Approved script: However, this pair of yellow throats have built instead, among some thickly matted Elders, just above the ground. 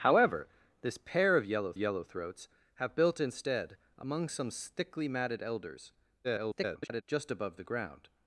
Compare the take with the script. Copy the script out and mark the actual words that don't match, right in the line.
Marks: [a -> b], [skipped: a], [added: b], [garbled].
However, this pair of yellow [added: yellow] throats have built instead, among some thickly matted Elders, [garbled] just above the ground.